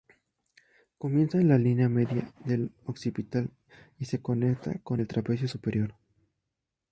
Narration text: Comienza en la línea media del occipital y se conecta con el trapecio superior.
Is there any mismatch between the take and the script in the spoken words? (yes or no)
no